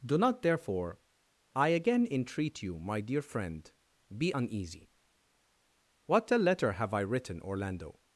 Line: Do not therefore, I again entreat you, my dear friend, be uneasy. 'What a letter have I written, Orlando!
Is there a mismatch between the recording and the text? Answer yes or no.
no